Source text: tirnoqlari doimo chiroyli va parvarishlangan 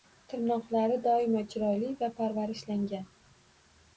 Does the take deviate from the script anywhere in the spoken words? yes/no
no